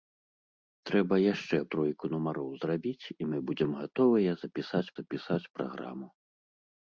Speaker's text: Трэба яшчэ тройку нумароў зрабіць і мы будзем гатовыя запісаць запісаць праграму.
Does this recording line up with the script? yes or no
yes